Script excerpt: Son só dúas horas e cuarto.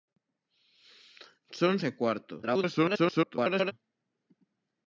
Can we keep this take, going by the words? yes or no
no